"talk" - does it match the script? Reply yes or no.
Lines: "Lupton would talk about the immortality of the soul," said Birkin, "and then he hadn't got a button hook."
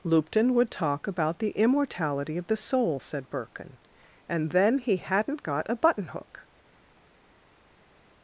yes